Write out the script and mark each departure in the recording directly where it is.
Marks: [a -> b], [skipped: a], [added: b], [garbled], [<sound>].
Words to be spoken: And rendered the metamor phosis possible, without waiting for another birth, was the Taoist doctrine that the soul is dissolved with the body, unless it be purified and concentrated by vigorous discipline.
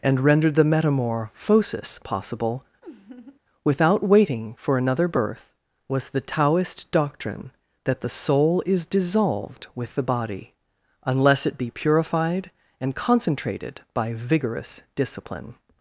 And rendered the metamor phosis possible, [laugh] without waiting for another birth, was the Taoist doctrine that the soul is dissolved with the body, unless it be purified and concentrated by vigorous discipline.